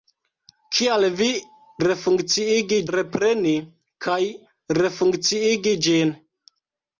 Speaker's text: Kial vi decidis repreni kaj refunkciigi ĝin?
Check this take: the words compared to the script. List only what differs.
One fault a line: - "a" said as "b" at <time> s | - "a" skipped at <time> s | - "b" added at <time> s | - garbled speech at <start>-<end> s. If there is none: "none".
- "decidis" said as "refunkciigi" at 1.9 s